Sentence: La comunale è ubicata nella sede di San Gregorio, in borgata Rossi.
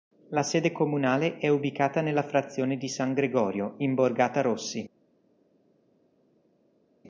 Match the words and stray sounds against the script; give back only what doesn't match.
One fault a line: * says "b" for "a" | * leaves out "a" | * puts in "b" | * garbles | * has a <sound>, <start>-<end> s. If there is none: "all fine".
* puts in "sede"
* says "frazione" for "sede"